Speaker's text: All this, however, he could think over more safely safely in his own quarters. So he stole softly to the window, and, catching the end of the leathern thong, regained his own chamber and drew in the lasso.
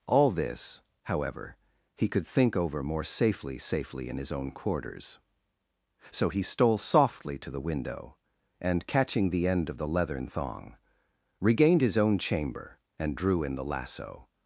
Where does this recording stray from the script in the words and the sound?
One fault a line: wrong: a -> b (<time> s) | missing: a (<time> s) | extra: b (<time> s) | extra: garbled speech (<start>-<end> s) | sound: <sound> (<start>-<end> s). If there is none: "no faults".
no faults